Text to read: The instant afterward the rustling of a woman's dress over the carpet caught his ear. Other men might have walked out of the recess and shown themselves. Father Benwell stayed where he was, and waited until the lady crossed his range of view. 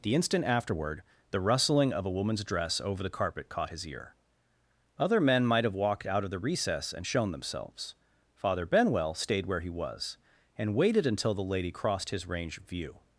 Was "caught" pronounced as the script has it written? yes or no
yes